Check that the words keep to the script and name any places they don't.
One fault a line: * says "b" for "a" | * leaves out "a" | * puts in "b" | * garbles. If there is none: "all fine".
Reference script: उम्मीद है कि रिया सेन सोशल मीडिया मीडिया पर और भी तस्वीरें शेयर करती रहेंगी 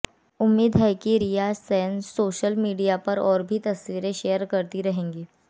* leaves out "मीडिया"